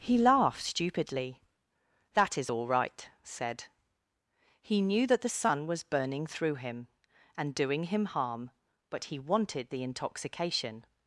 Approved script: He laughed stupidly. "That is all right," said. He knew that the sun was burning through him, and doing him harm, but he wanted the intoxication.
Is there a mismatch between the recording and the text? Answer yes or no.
no